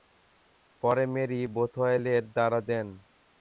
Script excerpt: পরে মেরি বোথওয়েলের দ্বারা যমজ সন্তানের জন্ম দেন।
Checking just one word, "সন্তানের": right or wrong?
wrong